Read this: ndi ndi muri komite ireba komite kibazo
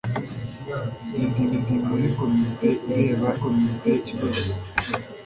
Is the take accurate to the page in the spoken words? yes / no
yes